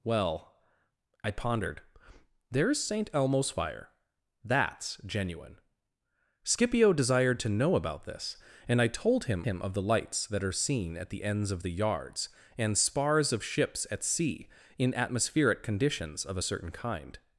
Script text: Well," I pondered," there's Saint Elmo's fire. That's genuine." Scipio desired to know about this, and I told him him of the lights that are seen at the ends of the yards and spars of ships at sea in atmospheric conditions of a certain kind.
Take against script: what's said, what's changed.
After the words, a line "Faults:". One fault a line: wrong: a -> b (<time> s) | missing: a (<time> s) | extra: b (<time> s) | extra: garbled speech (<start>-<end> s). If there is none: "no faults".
Well," I pondered," there's Saint Elmo's fire. That's genuine." Scipio desired to know about this, and I told him him of the lights that are seen at the ends of the yards and spars of ships at sea in atmospheric conditions of a certain kind.
Faults:
no faults